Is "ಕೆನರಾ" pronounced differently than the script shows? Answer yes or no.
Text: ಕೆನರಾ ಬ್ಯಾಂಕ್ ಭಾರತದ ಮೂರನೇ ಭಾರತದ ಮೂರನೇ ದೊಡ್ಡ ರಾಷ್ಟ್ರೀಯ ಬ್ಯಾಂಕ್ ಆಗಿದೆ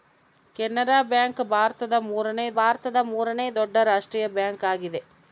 no